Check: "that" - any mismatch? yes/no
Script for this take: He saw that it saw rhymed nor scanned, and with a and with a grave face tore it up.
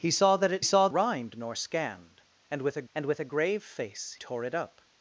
no